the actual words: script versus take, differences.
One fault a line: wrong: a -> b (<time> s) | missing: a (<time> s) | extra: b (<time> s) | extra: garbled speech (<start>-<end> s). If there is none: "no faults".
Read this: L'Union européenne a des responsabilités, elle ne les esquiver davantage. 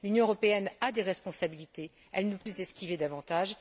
no faults